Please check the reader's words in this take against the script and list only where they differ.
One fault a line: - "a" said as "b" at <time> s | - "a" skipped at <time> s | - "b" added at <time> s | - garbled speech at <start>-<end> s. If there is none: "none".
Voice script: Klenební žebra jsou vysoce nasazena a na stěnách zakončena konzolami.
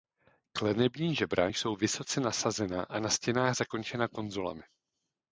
none